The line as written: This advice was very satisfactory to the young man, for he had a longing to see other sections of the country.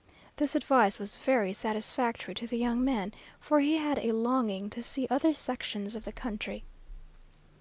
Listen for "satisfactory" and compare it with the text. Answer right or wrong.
right